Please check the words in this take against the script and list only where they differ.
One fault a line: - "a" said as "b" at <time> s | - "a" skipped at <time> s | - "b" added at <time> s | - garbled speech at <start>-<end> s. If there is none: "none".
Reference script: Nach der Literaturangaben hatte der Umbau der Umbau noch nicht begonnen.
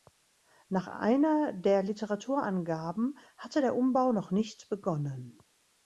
- "einer" added at 0.9 s
- "der Umbau" skipped at 4.1 s